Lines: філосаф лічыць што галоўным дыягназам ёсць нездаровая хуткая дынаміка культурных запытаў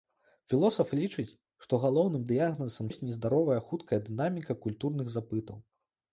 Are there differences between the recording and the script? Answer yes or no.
no